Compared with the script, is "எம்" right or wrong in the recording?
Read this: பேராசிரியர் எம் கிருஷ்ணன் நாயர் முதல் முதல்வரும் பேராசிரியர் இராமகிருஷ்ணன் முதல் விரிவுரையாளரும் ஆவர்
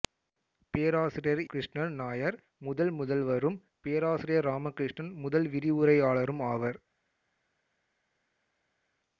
wrong